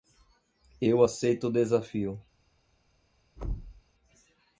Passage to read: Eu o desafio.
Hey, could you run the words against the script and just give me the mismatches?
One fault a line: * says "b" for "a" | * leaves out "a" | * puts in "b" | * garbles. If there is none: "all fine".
* puts in "aceito"